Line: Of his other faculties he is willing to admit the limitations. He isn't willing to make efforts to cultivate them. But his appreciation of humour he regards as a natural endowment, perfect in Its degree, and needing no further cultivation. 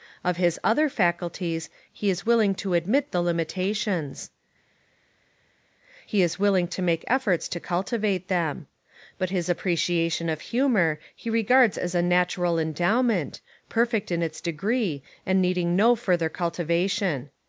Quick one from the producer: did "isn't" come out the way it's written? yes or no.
no